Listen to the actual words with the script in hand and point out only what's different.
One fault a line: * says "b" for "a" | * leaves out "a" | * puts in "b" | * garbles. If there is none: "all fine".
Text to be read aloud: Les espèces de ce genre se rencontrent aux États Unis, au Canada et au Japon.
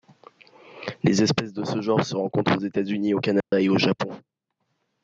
all fine